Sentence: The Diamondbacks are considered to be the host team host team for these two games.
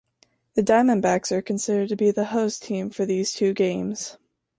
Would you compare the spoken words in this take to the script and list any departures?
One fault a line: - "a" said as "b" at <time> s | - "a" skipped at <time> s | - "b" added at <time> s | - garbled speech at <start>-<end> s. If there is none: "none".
- "host team" skipped at 2.9 s